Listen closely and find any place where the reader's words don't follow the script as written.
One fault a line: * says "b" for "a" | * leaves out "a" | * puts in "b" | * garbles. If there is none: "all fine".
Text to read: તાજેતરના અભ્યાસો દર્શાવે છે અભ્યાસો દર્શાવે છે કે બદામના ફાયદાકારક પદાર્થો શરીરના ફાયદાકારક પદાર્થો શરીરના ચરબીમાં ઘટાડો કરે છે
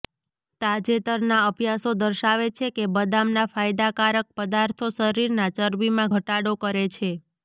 * leaves out "અભ્યાસો દર્શાવે છે"
* leaves out "ફાયદાકારક પદાર્થો શરીરના"